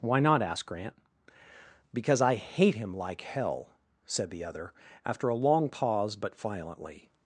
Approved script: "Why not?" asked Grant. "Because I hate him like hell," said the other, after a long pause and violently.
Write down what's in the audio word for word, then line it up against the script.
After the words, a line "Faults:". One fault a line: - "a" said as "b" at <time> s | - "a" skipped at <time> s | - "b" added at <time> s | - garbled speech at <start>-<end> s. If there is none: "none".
"Why not?" asked Grant. "Because I hate him like hell," said the other, after a long pause but violently.
Faults:
- "and" said as "but" at 6.2 s